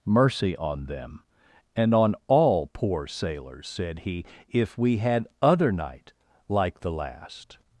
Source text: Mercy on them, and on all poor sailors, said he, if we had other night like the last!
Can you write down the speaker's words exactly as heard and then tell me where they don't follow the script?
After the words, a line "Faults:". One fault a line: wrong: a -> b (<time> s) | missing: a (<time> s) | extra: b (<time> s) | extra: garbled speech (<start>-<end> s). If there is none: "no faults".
Mercy on them, and on all poor sailors, said he, if we had other night like the last!
Faults:
no faults